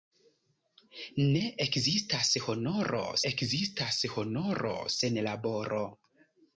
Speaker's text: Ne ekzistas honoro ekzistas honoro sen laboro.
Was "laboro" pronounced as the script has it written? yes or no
yes